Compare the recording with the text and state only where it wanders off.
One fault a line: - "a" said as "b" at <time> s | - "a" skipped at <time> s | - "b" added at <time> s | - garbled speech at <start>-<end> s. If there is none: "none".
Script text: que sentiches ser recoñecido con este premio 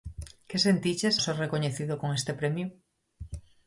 none